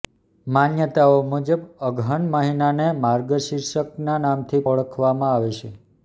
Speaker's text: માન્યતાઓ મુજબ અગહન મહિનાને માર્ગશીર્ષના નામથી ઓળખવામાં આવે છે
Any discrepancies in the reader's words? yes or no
no